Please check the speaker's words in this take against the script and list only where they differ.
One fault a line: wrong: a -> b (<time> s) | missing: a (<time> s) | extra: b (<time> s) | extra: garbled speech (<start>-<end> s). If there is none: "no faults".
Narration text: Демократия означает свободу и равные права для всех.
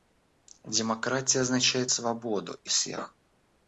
missing: равные права для (2.7 s)